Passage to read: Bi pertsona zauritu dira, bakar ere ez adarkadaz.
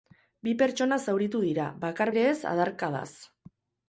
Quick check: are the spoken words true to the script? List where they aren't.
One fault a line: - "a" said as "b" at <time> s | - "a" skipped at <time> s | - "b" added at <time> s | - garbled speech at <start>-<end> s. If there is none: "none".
none